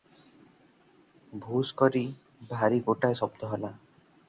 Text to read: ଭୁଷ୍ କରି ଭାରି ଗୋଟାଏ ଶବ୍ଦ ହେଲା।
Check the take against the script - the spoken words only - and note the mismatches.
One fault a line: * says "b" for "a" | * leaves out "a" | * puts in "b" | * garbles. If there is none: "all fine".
all fine